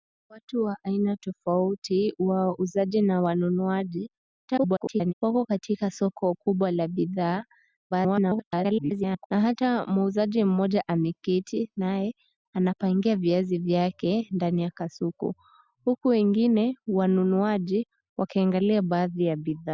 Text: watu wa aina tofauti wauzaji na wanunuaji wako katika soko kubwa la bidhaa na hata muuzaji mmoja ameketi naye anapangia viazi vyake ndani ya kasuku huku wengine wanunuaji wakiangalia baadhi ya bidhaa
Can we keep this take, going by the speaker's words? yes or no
no